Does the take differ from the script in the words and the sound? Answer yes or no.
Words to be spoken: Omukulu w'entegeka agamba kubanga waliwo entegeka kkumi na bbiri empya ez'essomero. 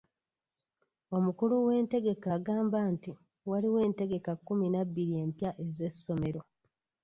yes